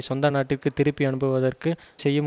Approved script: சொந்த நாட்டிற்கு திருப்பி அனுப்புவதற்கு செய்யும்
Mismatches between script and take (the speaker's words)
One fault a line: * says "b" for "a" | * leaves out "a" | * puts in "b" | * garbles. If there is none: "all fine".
all fine